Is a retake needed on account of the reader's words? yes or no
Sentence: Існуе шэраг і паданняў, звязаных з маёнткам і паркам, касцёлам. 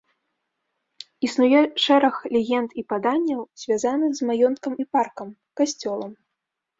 yes